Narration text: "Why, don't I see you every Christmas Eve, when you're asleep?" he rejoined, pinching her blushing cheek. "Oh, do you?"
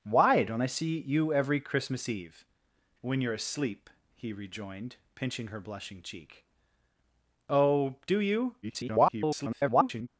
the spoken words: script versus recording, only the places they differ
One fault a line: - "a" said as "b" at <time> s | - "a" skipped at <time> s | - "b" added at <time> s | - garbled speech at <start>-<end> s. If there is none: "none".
- garbled speech at 8.6-10.1 s